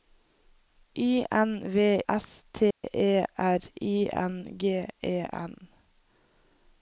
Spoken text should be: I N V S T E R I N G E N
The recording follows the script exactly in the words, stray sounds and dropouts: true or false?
false